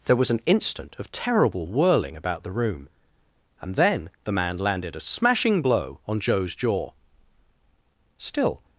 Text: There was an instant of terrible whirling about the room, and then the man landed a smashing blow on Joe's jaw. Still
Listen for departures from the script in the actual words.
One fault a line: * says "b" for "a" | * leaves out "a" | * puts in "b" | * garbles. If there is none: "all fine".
all fine